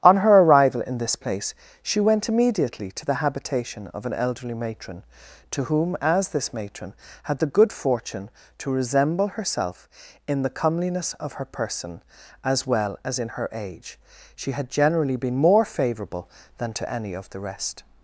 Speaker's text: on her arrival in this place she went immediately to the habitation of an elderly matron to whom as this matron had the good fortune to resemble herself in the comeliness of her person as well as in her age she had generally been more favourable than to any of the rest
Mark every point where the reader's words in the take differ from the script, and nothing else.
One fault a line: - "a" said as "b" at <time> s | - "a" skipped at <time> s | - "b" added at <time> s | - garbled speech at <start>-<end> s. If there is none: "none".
none